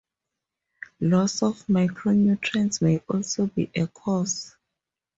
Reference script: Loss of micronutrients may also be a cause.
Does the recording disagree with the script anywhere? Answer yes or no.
no